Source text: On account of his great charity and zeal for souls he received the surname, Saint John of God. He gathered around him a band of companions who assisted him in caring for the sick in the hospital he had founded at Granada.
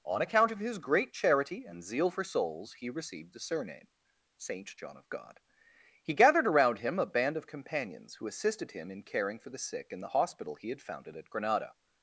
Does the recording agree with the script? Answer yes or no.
yes